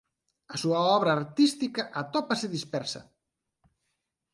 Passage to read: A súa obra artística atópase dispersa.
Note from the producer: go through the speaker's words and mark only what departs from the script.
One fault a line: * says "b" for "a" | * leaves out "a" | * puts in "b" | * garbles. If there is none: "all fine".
all fine